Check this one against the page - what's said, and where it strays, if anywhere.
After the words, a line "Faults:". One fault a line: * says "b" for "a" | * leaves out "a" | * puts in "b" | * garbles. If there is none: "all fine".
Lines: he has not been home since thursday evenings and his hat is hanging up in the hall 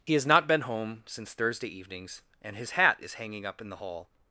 he has not been home since thursday evenings and his hat is hanging up in the hall
Faults:
all fine